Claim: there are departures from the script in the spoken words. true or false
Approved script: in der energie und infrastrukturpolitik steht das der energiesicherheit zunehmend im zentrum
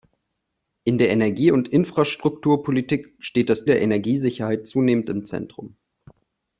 false